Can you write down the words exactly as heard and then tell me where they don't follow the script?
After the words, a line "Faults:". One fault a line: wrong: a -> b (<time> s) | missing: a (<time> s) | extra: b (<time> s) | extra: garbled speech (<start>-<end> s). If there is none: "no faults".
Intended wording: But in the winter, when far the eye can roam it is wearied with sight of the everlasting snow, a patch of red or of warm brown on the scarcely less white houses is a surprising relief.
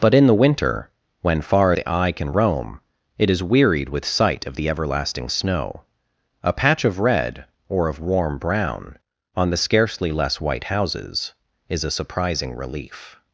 But in the winter, when far the eye can roam it is wearied with sight of the everlasting snow, a patch of red or of warm brown on the scarcely less white houses is a surprising relief.
Faults:
no faults